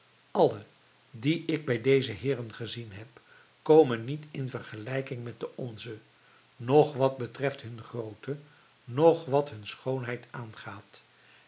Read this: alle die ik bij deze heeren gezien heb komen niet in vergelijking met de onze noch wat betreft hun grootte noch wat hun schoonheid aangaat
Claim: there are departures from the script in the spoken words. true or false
false